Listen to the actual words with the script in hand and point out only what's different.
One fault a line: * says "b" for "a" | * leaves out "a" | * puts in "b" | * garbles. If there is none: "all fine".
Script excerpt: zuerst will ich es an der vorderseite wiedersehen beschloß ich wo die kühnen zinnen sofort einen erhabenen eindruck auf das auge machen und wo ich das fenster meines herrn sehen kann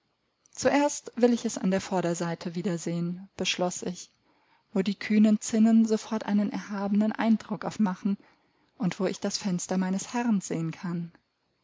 * leaves out "das auge"